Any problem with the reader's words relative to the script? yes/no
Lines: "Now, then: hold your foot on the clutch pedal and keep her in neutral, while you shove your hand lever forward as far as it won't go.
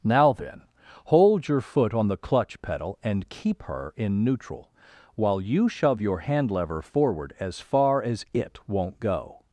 no